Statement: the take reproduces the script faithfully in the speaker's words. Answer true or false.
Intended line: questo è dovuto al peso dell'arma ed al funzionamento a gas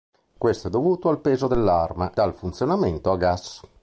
false